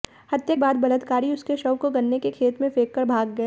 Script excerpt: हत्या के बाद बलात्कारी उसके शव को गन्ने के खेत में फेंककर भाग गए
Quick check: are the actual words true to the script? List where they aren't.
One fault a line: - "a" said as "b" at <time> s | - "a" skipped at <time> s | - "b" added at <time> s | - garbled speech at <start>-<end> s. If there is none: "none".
- "के" skipped at 0.6 s